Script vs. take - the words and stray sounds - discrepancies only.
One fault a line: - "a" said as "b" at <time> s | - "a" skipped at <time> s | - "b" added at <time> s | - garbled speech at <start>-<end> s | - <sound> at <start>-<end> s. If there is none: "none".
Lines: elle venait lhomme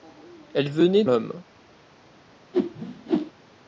- whoosh at 2.5-3.3 s